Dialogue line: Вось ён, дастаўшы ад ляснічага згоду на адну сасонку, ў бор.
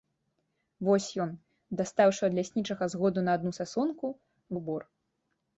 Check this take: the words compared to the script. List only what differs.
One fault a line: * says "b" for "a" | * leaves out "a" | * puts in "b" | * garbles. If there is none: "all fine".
all fine